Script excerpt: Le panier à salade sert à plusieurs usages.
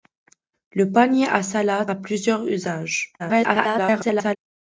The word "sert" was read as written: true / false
false